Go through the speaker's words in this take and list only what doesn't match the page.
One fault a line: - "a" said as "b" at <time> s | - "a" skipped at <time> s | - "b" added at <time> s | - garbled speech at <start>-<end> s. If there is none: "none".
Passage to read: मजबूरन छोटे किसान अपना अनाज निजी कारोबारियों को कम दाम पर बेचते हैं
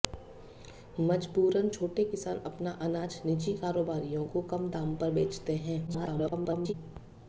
- garbled speech at 5.9-6.7 s